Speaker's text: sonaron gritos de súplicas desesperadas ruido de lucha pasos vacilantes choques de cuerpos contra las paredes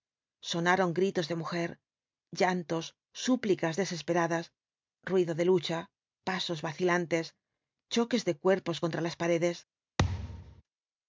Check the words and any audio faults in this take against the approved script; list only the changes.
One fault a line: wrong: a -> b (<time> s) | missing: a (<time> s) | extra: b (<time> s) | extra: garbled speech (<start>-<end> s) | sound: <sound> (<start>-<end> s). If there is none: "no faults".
extra: mujer llantos (1.4 s)
sound: thud (10.0-10.6 s)